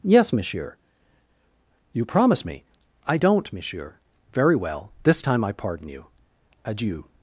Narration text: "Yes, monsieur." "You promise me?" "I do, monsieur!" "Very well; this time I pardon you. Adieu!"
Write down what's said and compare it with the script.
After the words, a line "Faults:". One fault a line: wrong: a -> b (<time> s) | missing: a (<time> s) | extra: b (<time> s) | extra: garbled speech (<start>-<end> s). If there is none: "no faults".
"Yes, monsieur." "You promise me?" "I don't, monsieur!" "Very well; this time I pardon you. Adieu!"
Faults:
wrong: do -> don't (3.1 s)